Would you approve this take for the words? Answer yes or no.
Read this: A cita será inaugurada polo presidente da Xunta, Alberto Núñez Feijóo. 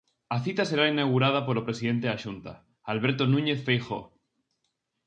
yes